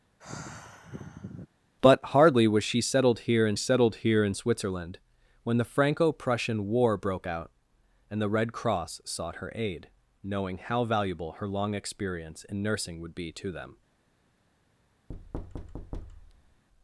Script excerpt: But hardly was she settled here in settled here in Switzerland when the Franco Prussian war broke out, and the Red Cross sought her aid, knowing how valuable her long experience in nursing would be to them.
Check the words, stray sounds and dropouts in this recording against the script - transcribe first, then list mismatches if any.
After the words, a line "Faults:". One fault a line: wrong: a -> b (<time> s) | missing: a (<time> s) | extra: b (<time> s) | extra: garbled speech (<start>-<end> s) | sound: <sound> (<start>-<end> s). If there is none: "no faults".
But hardly was she settled here in settled here in Switzerland when the Franco Prussian war broke out, and the Red Cross sought her aid, knowing how valuable her long experience in nursing would be to them.
Faults:
sound: sigh (0.2-1.5 s)
sound: thud (15.1-16.6 s)